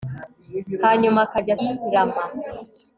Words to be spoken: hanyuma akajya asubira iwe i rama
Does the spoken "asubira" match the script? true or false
false